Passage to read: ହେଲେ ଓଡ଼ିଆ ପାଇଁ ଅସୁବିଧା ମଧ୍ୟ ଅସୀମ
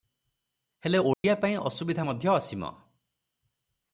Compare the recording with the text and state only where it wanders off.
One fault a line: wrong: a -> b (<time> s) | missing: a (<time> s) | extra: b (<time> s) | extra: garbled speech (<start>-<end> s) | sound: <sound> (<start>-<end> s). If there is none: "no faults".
sound: dropout (1.1-1.2 s)